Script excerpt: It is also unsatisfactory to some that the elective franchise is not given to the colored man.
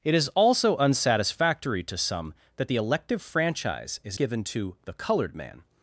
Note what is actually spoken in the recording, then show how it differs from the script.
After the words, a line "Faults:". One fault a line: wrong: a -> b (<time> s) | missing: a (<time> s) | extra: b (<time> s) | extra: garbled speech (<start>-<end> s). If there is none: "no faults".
It is also unsatisfactory to some that the elective franchise is given to the colored man.
Faults:
missing: not (4.2 s)